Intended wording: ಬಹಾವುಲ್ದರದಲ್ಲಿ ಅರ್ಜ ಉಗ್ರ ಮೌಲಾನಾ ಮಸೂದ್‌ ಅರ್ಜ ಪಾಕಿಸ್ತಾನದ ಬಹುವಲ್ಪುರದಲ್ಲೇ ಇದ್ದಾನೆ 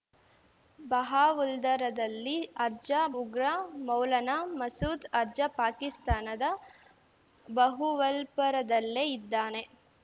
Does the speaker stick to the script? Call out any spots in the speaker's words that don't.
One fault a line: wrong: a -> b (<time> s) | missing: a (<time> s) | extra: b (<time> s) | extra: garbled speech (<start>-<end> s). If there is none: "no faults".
no faults